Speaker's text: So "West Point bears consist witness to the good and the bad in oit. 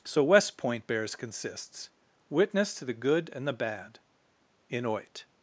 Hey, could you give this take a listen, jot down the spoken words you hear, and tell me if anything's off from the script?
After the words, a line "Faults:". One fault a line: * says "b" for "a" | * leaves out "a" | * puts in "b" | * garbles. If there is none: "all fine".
So "West Point bears consists witness to the good and the bad in oit.
Faults:
* says "consists" for "consist"